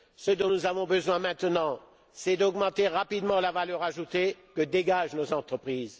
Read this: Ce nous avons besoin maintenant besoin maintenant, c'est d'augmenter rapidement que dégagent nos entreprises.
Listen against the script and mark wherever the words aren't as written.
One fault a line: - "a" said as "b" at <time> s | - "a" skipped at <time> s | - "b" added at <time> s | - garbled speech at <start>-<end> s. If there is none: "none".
- "dont" added at 0.3 s
- "besoin maintenant" skipped at 1.8 s
- "la valeur ajoutée" added at 3.4 s